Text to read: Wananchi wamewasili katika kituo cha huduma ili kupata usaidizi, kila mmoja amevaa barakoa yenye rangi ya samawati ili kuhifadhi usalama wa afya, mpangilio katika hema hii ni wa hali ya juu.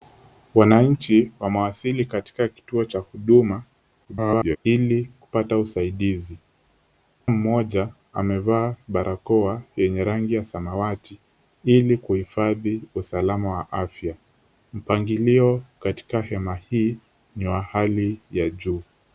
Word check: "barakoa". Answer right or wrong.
right